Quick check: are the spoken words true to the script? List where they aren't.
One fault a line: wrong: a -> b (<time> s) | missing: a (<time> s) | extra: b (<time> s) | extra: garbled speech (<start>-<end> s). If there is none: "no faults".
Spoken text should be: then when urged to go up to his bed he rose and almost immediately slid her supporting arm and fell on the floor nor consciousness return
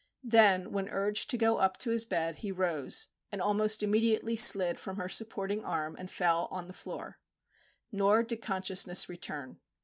extra: from (4.8 s)
extra: did (8.2 s)